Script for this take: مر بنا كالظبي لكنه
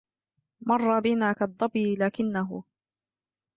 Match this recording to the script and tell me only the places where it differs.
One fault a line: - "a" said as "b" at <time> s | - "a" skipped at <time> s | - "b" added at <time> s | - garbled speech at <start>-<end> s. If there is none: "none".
none